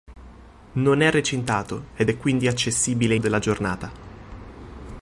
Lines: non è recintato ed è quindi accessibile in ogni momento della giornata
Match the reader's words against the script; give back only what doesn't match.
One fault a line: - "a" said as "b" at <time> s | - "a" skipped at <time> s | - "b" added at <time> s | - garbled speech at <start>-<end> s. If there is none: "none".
- "in ogni momento" skipped at 3.1 s